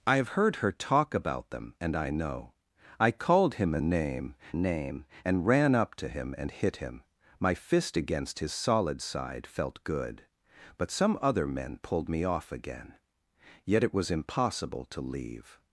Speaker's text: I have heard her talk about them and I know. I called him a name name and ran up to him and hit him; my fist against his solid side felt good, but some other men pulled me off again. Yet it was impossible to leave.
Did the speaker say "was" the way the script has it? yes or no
yes